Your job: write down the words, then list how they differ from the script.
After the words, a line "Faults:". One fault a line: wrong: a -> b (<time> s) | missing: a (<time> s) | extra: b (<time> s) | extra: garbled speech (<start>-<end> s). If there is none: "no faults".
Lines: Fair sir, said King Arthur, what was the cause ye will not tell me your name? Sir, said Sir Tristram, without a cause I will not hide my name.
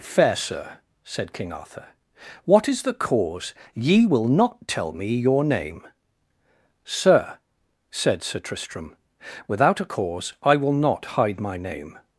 Fair sir, said King Arthur, what is the cause ye will not tell me your name? Sir, said Sir Tristram, without a cause I will not hide my name.
Faults:
wrong: was -> is (2.7 s)